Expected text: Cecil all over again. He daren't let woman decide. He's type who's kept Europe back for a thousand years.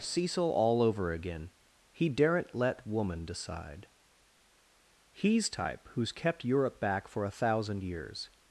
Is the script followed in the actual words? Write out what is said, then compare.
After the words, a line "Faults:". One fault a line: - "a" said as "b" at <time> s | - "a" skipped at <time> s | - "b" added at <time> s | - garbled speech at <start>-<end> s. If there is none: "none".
Cecil all over again. He daren't let woman decide. He's type who's kept Europe back for a thousand years.
Faults:
none